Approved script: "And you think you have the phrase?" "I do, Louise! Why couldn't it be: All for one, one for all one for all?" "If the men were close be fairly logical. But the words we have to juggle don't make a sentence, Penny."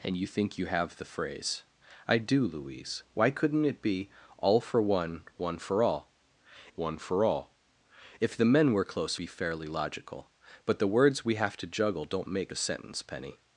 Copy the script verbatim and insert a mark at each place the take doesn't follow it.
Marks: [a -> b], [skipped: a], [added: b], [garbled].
"And you think you have the phrase?" "I do, Louise! Why couldn't it be: All for one, one for all one for all?" "If the men were close be fairly logical. But the words we have to juggle don't make a sentence, Penny."